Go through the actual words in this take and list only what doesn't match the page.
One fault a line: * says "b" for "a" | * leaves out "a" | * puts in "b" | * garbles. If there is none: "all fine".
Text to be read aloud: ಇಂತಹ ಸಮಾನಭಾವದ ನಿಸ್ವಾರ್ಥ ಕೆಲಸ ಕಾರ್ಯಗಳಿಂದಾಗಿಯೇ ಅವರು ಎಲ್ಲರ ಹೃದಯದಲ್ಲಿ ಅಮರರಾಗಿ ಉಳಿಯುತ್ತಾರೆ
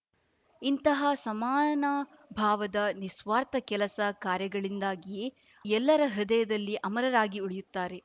* leaves out "ಅವರು"